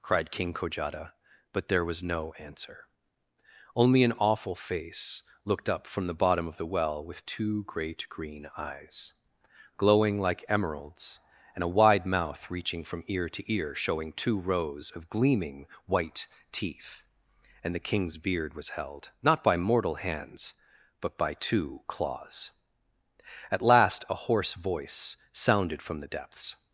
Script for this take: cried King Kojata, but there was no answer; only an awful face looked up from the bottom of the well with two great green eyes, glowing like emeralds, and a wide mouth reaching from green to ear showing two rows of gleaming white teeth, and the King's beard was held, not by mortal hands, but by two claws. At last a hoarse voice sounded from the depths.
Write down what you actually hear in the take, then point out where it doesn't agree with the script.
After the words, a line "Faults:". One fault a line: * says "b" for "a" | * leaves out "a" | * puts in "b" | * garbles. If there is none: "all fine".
cried King Kojata, but there was no answer; only an awful face looked up from the bottom of the well with two great green eyes, glowing like emeralds, and a wide mouth reaching from ear to ear showing two rows of gleaming white teeth, and the King's beard was held, not by mortal hands, but by two claws. At last a hoarse voice sounded from the depths.
Faults:
* says "ear" for "green"